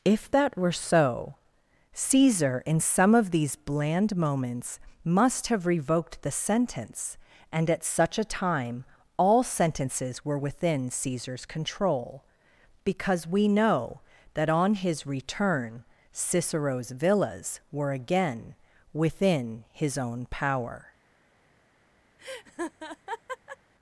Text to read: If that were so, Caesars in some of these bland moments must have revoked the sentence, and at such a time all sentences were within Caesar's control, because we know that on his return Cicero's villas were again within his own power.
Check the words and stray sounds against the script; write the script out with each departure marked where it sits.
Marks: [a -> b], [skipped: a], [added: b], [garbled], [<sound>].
If that were so, [Caesars -> Caesar] in some of these bland moments must have revoked the sentence, and at such a time all sentences were within Caesar's control, because we know that on his return Cicero's villas were again within his own power. [laugh]